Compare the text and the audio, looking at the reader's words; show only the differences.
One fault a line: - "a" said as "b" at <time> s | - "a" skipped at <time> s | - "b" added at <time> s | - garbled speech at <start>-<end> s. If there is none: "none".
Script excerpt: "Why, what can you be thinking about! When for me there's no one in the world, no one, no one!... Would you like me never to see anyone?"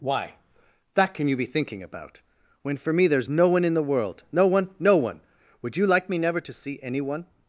- "what" said as "that" at 0.9 s